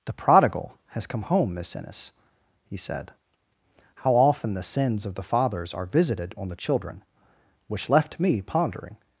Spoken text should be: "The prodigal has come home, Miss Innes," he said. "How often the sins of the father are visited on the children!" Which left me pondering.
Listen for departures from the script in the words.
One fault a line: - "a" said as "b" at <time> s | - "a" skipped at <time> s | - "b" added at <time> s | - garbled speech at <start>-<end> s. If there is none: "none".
- "father" said as "fathers" at 5.3 s